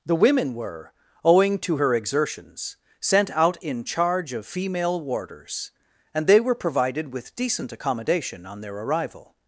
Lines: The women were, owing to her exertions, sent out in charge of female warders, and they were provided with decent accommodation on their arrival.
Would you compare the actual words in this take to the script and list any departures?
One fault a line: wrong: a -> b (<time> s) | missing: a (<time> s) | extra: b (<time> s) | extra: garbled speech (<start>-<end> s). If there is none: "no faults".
no faults